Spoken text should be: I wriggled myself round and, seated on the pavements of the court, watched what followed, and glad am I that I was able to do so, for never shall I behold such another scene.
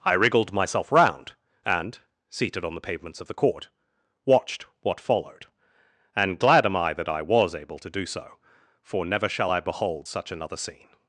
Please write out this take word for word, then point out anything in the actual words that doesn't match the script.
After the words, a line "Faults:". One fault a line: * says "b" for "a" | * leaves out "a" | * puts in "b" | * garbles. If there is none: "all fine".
I wriggled myself round and, seated on the pavements of the court, watched what followed, and glad am I that I was able to do so, for never shall I behold such another scene.
Faults:
all fine